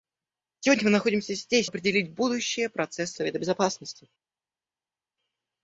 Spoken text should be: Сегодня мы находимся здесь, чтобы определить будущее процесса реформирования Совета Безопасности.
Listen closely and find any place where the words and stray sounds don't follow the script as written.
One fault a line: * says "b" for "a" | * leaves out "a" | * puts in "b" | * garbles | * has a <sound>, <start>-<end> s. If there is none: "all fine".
* leaves out "чтобы"
* leaves out "реформирования"